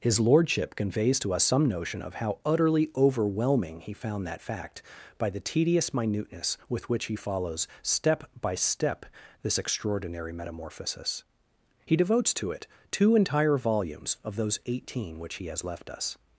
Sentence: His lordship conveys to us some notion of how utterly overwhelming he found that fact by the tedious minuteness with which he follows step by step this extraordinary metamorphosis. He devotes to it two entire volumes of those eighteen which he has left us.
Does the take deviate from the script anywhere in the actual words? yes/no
no